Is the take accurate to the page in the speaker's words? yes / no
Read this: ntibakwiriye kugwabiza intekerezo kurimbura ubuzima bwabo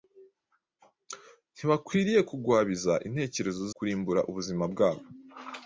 yes